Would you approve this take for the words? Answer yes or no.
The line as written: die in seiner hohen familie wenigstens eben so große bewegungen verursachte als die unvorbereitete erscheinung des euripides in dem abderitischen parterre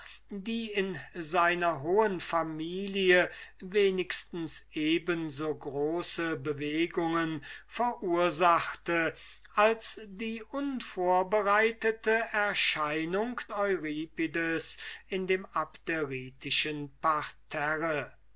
no